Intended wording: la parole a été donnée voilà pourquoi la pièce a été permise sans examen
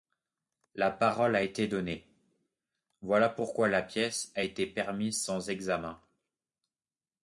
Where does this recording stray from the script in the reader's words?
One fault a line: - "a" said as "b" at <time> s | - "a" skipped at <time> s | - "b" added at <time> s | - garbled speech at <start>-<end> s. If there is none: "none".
none